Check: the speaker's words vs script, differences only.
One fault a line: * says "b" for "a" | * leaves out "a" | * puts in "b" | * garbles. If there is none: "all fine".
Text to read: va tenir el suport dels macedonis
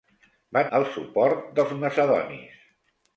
* leaves out "tenir"